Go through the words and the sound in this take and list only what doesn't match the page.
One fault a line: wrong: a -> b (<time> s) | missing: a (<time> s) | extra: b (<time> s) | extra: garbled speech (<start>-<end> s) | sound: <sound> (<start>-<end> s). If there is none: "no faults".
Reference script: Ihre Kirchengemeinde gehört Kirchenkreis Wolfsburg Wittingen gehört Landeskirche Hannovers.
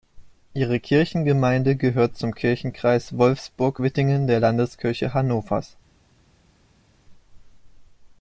extra: zum (2.2 s)
wrong: gehört -> der (4.3 s)